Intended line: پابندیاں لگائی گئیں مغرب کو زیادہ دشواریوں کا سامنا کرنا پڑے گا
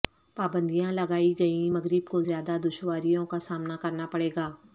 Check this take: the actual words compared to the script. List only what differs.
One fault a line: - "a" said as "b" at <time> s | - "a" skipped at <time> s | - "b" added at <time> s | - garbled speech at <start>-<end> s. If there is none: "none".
none